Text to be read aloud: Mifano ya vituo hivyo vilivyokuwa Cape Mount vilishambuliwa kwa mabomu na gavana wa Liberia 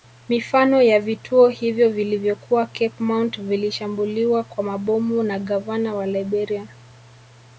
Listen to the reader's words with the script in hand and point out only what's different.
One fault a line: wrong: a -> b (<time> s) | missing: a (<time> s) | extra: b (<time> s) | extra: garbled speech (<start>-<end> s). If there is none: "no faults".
no faults